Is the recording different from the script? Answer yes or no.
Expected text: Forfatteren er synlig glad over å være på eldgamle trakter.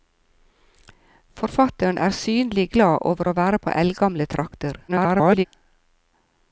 yes